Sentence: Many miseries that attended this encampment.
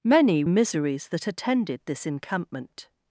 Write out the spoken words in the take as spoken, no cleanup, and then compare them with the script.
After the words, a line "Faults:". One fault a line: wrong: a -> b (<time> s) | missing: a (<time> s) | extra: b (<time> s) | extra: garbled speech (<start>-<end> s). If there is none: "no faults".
Many miseries that attended this encampment.
Faults:
no faults